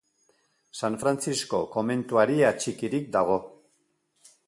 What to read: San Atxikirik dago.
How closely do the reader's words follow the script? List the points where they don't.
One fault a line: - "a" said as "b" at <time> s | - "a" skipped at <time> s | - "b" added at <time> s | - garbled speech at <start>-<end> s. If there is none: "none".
- "Frantzisko komentuari" added at 1.0 s